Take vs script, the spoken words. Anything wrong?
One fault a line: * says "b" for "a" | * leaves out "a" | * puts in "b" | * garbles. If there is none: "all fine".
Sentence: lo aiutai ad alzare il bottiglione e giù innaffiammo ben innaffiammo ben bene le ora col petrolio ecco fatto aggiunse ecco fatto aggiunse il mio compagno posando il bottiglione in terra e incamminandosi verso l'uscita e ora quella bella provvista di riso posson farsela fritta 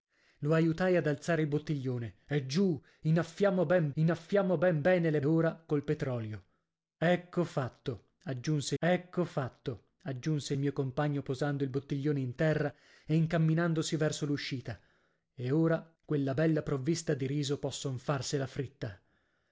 all fine